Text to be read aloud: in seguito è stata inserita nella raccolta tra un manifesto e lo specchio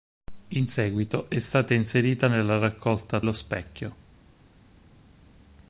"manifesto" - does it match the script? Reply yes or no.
no